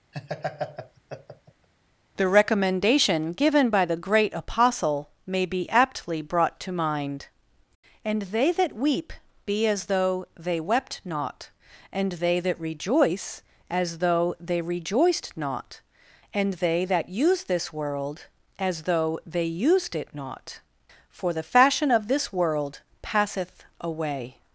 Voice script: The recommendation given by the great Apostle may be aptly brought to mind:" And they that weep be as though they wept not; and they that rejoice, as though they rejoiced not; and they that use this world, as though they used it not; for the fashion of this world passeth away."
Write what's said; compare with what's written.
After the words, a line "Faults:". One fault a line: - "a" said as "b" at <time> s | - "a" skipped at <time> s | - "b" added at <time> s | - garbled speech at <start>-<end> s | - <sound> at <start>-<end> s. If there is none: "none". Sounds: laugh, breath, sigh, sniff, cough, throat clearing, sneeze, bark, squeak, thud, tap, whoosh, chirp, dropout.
The recommendation given by the great Apostle may be aptly brought to mind:" And they that weep be as though they wept not; and they that rejoice, as though they rejoiced not; and they that use this world, as though they used it not; for the fashion of this world passeth away."
Faults:
- laugh at 0.1-1.7 s